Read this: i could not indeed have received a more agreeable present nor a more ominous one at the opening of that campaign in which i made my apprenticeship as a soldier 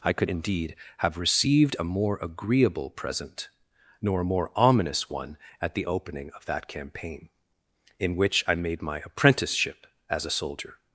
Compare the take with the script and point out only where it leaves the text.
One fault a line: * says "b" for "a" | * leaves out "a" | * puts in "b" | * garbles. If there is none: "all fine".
* leaves out "not"